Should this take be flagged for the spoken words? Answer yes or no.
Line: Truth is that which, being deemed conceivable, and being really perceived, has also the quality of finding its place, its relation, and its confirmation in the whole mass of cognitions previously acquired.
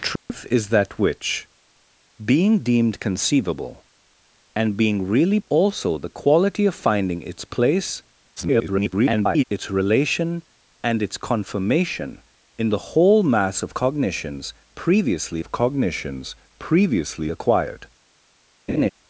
yes